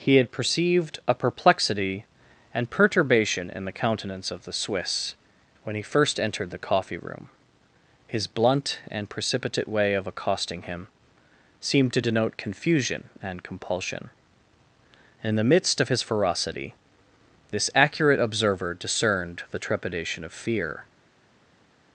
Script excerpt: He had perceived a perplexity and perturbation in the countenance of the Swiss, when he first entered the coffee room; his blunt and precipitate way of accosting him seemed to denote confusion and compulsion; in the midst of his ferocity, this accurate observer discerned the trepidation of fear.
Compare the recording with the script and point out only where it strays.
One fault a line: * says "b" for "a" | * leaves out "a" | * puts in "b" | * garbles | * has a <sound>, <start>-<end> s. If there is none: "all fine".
all fine